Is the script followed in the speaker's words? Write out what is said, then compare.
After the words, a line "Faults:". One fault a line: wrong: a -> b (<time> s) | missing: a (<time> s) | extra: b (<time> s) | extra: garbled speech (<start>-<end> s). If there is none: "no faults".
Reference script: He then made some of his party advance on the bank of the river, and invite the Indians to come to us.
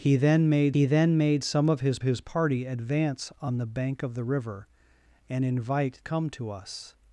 He then made he then made some of his his party advance on the bank of the river, and invite come to us.
Faults:
extra: he then made (0.7 s)
extra: his (2.0 s)
missing: the Indians to (6.0 s)